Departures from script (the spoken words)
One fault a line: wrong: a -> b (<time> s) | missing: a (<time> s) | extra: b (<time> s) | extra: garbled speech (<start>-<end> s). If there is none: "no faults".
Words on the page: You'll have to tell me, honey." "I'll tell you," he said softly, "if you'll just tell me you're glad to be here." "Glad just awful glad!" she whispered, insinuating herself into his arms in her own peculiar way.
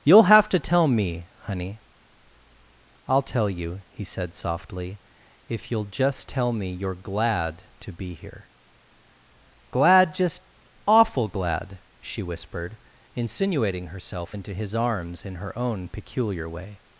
no faults